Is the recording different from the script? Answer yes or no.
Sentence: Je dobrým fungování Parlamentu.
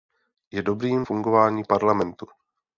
no